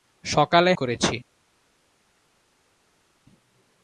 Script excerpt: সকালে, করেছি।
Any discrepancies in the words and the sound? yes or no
no